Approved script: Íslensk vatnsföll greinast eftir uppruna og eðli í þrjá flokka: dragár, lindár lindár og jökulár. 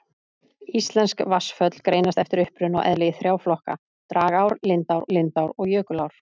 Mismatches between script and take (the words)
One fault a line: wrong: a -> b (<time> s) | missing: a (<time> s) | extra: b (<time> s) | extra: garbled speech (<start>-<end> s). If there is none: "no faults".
no faults